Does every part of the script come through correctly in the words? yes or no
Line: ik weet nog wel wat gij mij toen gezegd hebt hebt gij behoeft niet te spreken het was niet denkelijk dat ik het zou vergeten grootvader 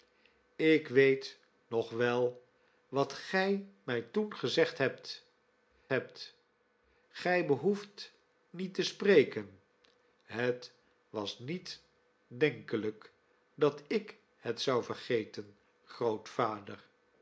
yes